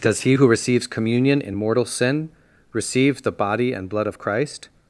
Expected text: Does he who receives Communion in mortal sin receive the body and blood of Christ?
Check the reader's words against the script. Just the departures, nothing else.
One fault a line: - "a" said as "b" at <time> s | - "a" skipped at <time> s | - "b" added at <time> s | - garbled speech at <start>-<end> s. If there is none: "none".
none